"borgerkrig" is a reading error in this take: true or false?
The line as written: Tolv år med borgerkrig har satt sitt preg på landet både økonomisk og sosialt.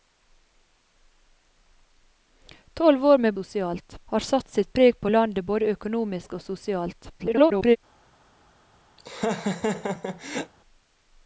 true